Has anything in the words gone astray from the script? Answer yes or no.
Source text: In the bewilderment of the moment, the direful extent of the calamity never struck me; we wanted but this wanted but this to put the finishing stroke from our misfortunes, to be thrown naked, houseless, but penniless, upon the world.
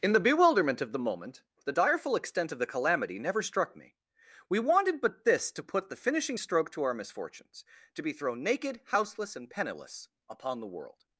yes